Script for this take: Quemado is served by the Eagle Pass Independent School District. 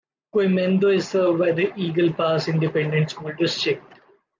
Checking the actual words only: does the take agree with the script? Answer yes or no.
yes